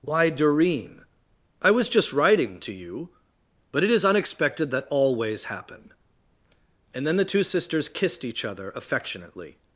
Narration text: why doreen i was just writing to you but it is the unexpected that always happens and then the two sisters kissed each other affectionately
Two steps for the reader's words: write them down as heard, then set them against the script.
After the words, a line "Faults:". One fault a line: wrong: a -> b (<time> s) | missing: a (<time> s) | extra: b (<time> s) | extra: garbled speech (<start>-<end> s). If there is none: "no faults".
why doreen i was just writing to you but it is unexpected that always happen and then the two sisters kissed each other affectionately
Faults:
missing: the (4.0 s)
wrong: happens -> happen (5.5 s)